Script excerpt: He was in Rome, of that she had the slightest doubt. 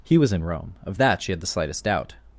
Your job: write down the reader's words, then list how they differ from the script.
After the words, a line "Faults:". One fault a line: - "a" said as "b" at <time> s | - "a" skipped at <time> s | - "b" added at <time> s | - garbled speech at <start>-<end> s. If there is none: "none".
He was in Rome, of that she had the slightest doubt.
Faults:
none